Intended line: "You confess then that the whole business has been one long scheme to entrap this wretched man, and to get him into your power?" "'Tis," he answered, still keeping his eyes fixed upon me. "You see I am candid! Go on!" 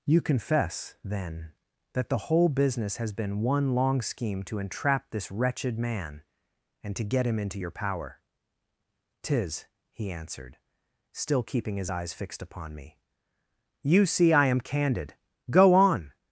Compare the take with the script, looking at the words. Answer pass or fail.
pass